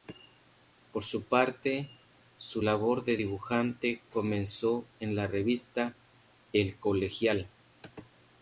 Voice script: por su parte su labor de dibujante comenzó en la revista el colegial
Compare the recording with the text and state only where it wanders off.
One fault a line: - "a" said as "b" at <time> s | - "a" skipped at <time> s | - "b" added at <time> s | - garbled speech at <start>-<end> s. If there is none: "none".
none